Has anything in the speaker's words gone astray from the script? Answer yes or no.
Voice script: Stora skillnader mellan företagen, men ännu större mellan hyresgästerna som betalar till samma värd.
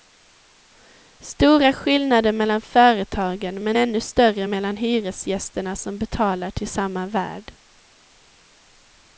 no